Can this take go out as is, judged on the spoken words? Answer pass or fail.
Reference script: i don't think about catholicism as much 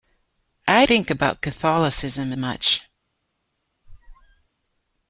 fail